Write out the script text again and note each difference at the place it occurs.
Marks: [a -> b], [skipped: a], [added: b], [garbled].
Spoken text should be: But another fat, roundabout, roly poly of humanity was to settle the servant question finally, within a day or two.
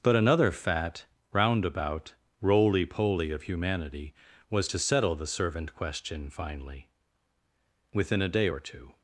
But another fat, roundabout, roly poly of humanity was to settle the servant question finally, within a day or two.